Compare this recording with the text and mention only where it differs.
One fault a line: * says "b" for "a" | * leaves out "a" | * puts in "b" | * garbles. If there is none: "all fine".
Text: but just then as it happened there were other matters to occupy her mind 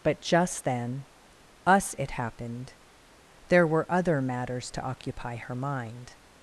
* says "us" for "as"